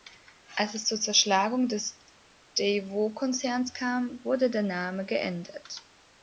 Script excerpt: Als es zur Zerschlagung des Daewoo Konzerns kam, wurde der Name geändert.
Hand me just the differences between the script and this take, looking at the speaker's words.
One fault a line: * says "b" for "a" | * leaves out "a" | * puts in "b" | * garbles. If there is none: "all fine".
all fine